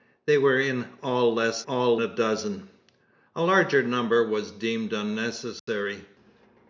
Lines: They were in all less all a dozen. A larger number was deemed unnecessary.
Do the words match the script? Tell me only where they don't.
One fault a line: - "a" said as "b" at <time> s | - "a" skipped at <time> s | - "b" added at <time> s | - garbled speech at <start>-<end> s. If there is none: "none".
none